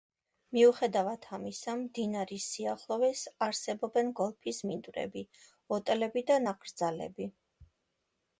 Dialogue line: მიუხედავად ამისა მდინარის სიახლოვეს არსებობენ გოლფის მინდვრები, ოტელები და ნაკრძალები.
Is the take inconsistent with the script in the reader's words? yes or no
no